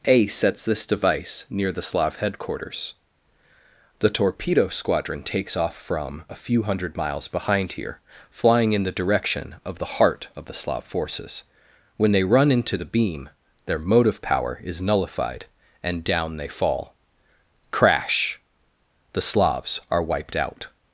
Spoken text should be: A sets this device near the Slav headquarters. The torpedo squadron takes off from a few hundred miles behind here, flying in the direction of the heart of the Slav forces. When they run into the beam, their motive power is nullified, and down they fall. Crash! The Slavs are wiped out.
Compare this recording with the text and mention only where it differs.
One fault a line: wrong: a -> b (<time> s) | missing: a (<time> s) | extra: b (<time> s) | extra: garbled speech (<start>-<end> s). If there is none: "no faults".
no faults